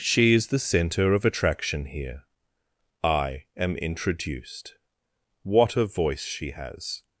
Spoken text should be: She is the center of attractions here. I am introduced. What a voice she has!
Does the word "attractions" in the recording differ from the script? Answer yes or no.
yes